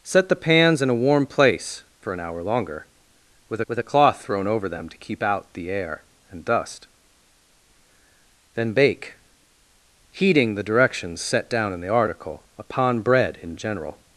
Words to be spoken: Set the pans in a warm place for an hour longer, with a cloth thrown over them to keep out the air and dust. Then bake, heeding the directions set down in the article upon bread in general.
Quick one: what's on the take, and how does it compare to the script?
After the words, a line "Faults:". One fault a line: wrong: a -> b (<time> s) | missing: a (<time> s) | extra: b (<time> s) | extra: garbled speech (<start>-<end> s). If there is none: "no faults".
Set the pans in a warm place for an hour longer, with with a cloth thrown over them to keep out the air and dust. Then bake, heeding the directions set down in the article upon bread in general.
Faults:
extra: with (3.7 s)